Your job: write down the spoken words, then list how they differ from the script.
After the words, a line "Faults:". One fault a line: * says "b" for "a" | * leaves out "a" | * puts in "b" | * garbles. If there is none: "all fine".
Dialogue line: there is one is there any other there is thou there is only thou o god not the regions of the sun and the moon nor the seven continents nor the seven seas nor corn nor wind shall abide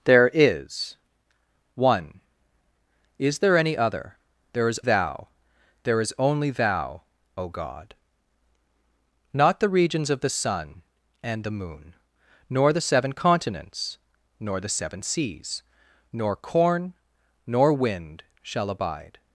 there is one is there any other there is thou there is only thou o god not the regions of the sun and the moon nor the seven continents nor the seven seas nor corn nor wind shall abide
Faults:
all fine